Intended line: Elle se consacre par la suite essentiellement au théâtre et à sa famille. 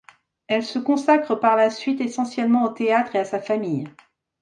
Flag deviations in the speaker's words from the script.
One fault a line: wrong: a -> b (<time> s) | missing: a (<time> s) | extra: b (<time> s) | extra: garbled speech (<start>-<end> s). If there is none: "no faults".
no faults